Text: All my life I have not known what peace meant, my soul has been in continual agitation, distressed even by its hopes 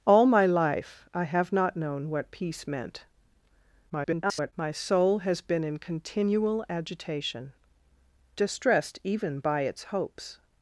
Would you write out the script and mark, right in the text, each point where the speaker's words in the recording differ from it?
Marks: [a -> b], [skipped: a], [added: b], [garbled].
All my life I have not known what peace meant, [garbled] my soul has been in continual agitation, distressed even by its hopes